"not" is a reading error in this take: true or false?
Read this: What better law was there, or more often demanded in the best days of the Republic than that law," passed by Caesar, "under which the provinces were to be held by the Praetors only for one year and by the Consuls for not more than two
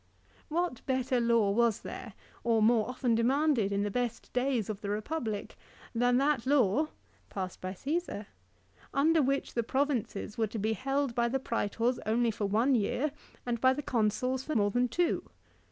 true